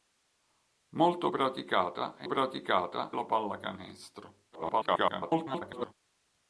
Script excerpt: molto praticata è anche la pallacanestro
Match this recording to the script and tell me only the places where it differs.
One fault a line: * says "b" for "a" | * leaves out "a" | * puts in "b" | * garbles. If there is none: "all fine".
* says "praticata" for "anche"
* garbles